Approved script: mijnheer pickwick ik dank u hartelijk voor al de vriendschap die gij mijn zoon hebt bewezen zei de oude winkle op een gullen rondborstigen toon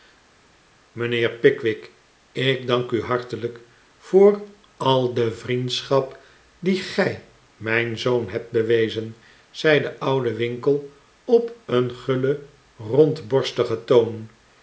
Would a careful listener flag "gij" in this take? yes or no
no